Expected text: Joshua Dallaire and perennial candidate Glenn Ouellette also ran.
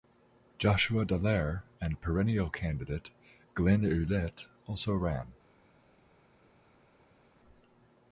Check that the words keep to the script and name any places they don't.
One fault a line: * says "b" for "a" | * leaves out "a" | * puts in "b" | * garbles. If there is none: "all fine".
all fine